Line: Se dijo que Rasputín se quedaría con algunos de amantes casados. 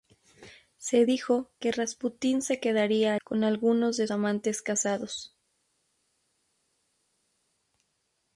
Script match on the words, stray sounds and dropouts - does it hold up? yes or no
yes